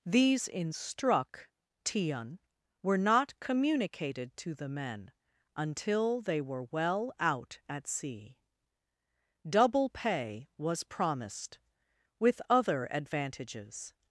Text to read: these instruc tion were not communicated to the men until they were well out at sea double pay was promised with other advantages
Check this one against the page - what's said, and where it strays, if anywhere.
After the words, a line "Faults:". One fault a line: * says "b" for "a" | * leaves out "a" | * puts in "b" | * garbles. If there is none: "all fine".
these instruc tion were not communicated to the men until they were well out at sea double pay was promised with other advantages
Faults:
all fine